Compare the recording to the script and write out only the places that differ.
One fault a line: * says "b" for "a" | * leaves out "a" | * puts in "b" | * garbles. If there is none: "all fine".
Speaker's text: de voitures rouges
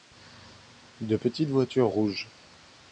* puts in "petites"